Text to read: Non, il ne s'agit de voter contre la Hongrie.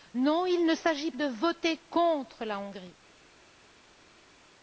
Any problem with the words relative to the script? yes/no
no